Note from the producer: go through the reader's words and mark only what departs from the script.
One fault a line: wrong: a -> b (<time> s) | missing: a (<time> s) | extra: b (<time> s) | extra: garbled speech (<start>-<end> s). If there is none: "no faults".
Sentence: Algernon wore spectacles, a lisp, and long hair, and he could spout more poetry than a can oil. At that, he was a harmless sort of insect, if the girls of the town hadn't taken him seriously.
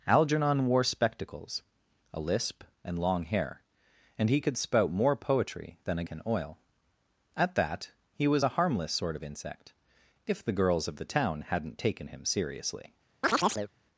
no faults